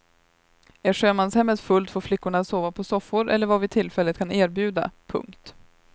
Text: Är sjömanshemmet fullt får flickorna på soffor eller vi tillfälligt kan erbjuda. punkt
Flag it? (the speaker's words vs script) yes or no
yes